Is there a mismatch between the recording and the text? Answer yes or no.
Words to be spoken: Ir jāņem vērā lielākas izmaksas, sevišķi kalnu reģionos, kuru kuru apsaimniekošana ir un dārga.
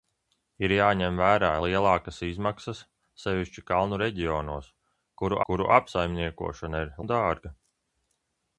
no